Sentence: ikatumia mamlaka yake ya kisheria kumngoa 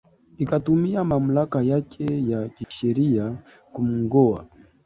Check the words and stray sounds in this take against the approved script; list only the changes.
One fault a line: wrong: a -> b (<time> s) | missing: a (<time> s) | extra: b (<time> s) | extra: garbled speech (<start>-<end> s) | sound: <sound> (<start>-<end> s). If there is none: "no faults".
sound: dropout (2.6-2.7 s)